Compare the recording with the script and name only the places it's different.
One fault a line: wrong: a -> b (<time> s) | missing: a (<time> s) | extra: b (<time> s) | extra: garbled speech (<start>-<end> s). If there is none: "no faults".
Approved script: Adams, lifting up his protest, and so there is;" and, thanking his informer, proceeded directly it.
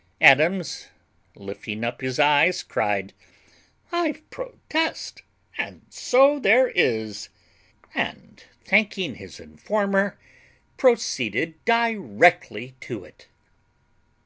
extra: eyes cried I (2.2 s)
extra: to (12.8 s)